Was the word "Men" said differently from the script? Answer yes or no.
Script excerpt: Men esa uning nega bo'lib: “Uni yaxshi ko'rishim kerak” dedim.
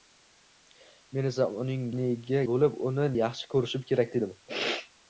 no